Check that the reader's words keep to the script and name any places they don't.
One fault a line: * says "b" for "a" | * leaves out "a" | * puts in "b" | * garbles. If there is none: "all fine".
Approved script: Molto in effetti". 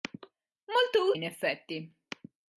all fine